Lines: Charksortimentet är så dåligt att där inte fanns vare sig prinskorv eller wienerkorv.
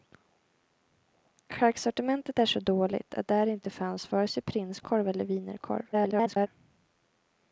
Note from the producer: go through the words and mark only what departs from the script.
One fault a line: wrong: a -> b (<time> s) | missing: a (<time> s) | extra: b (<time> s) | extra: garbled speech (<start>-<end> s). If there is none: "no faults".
extra: garbled speech (5.9-6.5 s)